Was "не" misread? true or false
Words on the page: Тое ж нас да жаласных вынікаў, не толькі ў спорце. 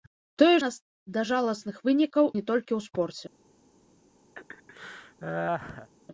false